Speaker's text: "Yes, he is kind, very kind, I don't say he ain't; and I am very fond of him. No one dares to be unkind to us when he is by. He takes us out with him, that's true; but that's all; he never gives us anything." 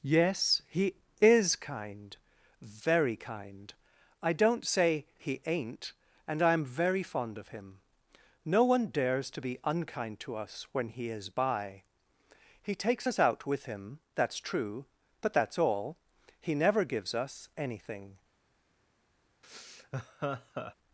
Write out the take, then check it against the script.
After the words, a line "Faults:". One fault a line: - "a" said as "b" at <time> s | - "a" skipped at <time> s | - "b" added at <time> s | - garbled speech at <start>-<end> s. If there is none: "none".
"Yes, he is kind, very kind, I don't say he ain't; and I am very fond of him. No one dares to be unkind to us when he is by. He takes us out with him, that's true; but that's all; he never gives us anything."
Faults:
none